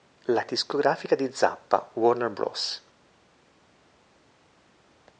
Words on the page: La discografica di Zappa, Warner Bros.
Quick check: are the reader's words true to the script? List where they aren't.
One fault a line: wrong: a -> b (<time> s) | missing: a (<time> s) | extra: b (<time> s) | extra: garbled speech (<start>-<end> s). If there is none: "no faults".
no faults